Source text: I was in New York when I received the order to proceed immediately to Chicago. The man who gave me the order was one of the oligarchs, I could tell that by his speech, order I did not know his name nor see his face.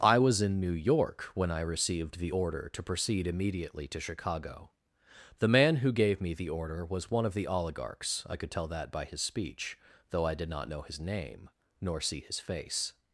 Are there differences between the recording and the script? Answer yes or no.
yes